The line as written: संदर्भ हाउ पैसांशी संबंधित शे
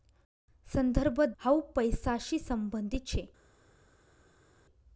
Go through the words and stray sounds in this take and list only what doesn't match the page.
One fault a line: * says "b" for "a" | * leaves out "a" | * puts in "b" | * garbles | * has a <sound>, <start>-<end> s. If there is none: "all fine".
all fine